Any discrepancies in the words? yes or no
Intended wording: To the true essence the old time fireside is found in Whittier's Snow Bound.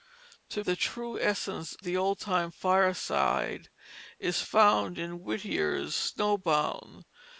no